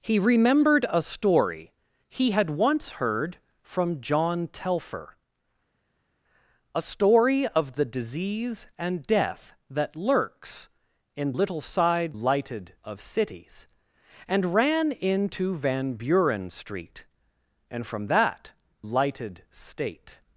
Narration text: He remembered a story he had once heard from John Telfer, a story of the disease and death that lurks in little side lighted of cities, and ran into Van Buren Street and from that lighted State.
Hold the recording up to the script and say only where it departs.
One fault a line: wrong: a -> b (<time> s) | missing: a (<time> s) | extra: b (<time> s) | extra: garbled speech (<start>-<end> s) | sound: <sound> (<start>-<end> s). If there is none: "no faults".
no faults